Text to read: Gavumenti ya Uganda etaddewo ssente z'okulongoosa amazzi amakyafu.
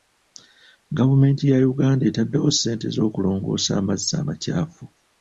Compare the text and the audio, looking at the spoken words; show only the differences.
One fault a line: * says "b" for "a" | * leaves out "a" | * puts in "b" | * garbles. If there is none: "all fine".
all fine